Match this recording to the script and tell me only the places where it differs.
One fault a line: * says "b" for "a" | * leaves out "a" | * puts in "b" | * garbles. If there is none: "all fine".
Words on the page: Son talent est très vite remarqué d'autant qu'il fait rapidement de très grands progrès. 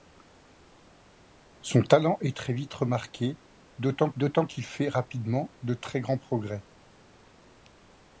* puts in "d'autant"